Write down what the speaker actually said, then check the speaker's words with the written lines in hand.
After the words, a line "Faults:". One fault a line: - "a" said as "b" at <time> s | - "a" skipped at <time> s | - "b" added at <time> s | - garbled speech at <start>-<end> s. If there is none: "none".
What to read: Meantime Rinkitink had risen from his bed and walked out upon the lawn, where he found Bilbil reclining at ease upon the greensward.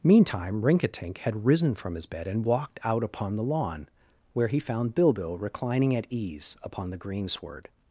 Meantime Rinkitink had risen from his bed and walked out upon the lawn, where he found Bilbil reclining at ease upon the greensward.
Faults:
none